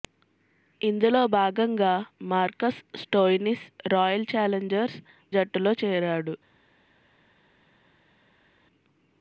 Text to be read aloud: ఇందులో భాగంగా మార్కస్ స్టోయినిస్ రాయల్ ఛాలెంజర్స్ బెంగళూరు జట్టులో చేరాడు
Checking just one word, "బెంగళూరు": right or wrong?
wrong